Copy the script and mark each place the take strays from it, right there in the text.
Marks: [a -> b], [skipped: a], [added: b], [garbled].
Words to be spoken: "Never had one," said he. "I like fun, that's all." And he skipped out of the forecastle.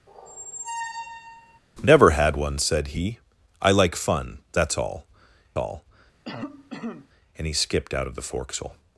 "Never had one," said he. "I like fun, that's all." [added: all] And he skipped out of the forecastle.